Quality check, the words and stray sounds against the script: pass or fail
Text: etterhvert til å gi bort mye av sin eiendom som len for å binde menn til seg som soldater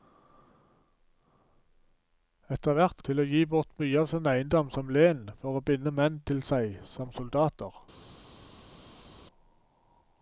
pass